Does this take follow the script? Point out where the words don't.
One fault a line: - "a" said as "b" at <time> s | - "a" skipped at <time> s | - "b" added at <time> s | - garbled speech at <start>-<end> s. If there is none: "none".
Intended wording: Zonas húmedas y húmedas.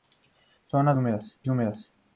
none